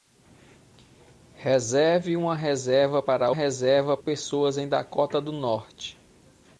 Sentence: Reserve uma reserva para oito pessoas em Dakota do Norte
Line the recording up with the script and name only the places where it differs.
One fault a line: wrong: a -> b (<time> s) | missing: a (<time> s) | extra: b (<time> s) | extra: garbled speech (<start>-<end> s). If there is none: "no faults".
wrong: oito -> reserva (3.3 s)